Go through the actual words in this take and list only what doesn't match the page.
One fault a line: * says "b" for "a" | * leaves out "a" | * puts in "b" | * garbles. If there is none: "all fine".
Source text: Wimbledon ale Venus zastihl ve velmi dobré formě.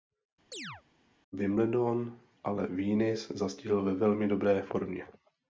all fine